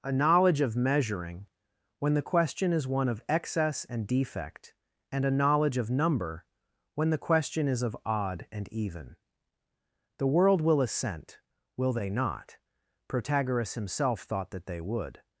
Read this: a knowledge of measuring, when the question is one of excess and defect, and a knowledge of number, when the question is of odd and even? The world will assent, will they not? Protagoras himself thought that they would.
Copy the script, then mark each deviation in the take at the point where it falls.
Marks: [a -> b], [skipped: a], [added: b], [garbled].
a knowledge of measuring, when the question is one of excess and defect, and a knowledge of number, when the question is of odd and even? The world will assent, will they not? Protagoras himself thought that they would.